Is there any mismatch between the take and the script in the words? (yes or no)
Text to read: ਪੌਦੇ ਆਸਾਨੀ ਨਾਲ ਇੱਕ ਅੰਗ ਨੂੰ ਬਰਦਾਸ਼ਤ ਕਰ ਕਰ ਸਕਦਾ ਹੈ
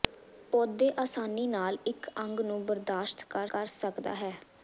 no